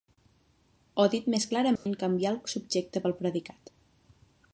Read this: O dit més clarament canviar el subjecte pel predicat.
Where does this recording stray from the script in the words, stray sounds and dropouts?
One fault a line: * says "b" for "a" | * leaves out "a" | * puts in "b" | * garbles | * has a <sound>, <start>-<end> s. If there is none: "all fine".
* has a dropout, 1.8-1.9 s